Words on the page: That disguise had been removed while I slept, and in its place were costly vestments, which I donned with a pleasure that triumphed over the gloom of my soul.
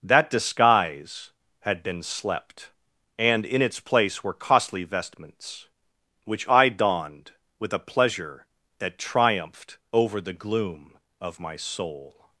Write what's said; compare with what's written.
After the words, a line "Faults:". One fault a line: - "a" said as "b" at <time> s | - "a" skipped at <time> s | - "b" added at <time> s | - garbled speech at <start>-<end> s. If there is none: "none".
That disguise had been slept, and in its place were costly vestments, which I donned with a pleasure that triumphed over the gloom of my soul.
Faults:
- "removed while I" skipped at 2.0 s